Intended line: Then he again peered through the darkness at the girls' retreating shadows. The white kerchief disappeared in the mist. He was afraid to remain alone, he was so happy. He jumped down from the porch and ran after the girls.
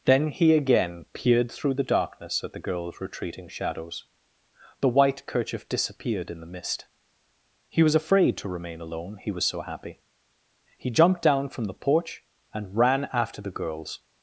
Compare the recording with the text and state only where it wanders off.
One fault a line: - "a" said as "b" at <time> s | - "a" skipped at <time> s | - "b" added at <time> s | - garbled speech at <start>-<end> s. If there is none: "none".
none